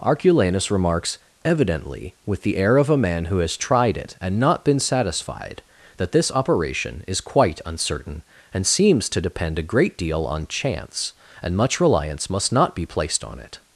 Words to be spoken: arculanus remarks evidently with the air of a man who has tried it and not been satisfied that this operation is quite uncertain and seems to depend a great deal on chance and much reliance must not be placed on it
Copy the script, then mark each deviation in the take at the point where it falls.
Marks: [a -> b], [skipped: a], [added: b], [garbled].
arculanus remarks evidently with the air of a man who has tried it and not been satisfied that this operation is quite uncertain and seems to depend a great deal on chance and much reliance must not be placed on it